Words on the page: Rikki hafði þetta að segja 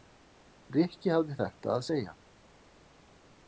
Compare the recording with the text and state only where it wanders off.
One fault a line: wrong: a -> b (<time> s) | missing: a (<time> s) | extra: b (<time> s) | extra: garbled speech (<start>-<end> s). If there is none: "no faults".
no faults